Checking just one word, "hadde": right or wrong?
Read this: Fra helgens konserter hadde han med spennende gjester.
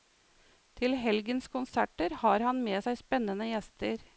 wrong